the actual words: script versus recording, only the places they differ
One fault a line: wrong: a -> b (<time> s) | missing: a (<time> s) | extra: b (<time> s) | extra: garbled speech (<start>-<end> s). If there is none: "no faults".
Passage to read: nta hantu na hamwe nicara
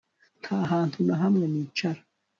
no faults